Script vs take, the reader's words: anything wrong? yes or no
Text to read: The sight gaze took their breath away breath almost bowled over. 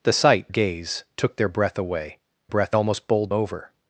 no